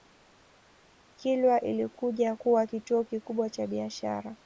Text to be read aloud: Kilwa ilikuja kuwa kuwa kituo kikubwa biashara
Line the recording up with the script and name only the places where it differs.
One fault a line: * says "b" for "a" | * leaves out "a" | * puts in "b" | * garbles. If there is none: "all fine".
* leaves out "kuwa"
* puts in "cha"